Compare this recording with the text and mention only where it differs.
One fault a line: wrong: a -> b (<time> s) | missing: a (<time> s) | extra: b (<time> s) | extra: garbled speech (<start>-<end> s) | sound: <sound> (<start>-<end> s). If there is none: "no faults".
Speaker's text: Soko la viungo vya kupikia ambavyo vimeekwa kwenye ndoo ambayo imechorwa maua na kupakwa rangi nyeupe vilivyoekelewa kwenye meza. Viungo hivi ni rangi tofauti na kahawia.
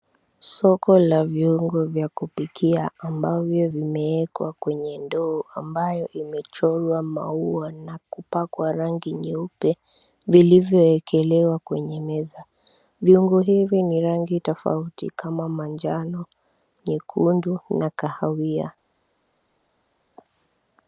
extra: kama manjano nyekundu (15.1 s)